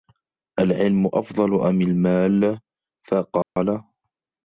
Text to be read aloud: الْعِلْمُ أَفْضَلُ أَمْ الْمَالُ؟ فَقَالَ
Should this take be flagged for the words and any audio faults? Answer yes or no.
yes